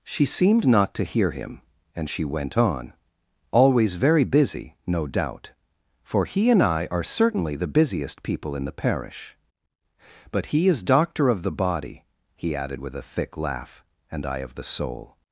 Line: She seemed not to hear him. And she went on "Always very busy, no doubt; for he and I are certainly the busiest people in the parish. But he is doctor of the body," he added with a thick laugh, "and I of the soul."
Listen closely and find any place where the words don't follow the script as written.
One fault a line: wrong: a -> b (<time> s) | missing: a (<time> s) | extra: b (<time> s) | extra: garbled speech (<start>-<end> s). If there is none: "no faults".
no faults